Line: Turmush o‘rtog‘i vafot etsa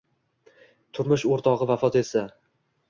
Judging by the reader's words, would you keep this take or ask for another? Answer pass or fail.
pass